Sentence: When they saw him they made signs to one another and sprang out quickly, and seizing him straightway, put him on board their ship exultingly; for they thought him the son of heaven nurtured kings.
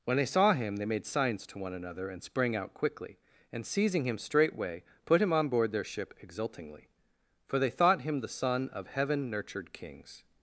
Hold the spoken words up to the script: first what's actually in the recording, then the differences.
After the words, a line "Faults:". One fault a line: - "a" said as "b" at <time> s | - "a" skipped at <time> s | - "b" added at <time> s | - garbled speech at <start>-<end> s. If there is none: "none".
When they saw him they made signs to one another and sprang out quickly, and seizing him straightway, put him on board their ship exultingly; for they thought him the son of heaven nurtured kings.
Faults:
none